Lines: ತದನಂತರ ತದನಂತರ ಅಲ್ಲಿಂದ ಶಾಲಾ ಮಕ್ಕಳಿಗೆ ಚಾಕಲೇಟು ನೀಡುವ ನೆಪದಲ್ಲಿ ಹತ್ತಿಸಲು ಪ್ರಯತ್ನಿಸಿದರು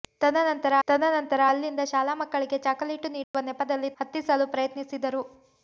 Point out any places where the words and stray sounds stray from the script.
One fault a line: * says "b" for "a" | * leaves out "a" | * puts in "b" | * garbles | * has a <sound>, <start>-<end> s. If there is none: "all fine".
* has a dropout, 3.2-3.3 s